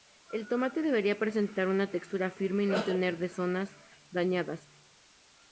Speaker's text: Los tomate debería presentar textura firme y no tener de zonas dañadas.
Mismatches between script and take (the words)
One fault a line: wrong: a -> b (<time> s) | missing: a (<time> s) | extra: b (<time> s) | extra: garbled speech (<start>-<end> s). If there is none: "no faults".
wrong: Los -> El (0.3 s)
extra: una (1.7 s)